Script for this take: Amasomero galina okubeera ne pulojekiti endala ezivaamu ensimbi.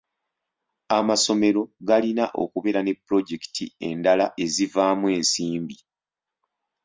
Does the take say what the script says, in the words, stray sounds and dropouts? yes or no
yes